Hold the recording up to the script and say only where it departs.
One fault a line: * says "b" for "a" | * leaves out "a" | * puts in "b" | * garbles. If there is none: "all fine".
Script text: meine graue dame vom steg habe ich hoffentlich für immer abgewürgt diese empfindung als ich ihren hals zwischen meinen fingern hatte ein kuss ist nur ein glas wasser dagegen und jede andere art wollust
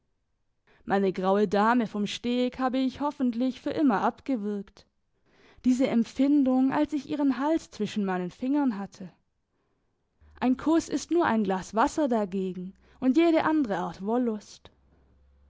all fine